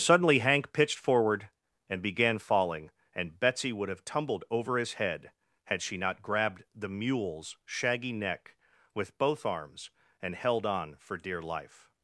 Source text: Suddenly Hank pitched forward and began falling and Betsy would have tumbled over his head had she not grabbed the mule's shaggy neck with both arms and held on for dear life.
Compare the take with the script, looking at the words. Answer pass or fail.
pass